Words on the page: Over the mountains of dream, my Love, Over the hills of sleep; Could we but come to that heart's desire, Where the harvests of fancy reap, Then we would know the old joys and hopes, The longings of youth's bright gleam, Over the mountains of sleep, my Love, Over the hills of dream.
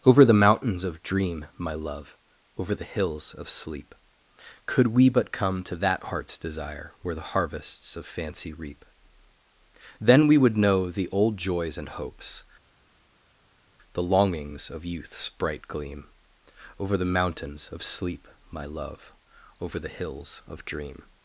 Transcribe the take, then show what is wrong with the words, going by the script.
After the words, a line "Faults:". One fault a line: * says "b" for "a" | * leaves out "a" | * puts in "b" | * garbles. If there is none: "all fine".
Over the mountains of dream, my Love, Over the hills of sleep; Could we but come to that heart's desire, Where the harvests of fancy reap, Then we would know the old joys and hopes, The longings of youth's bright gleam, Over the mountains of sleep, my Love, Over the hills of dream.
Faults:
all fine